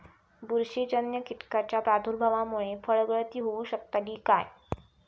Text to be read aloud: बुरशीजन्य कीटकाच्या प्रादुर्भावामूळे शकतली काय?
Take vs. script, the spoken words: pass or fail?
fail